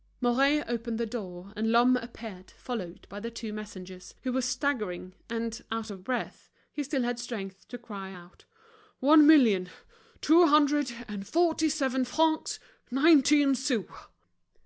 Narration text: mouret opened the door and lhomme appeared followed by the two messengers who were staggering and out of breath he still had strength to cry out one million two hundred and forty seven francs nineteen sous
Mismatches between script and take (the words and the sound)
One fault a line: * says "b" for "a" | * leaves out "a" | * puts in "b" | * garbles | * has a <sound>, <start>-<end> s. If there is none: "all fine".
all fine